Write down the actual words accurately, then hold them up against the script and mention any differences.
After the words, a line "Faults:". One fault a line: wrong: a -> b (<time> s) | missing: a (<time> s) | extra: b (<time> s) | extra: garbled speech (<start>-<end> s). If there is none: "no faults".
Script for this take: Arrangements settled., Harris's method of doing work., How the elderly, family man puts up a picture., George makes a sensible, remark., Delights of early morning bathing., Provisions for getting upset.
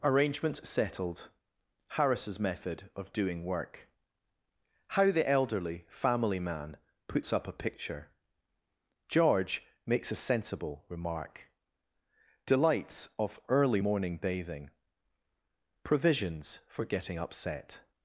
Arrangements settled., Harris's method of doing work., How the elderly, family man puts up a picture., George makes a sensible, remark., Delights of early morning bathing., Provisions for getting upset.
Faults:
no faults